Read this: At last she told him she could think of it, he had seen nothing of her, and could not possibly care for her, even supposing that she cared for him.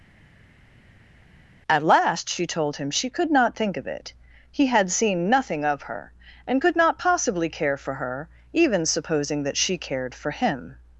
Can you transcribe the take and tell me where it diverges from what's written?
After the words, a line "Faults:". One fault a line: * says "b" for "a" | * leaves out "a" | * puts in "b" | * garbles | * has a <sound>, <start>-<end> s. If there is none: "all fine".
At last she told him she could not think of it, he had seen nothing of her, and could not possibly care for her, even supposing that she cared for him.
Faults:
* puts in "not"